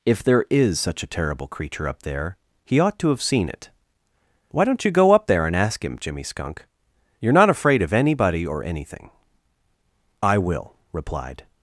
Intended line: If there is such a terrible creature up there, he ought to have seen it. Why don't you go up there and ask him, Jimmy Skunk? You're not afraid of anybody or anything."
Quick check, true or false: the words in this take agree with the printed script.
false